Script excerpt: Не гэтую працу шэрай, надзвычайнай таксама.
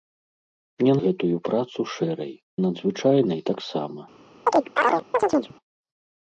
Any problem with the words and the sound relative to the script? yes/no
yes